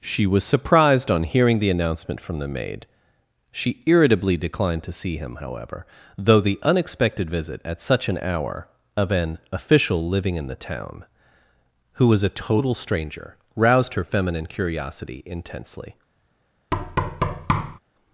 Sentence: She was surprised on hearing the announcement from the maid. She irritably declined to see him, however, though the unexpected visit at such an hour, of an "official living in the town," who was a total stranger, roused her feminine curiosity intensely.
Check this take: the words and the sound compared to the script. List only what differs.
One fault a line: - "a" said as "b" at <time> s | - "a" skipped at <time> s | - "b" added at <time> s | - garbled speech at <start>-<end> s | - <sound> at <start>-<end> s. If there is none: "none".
- thud at 16.7-17.8 s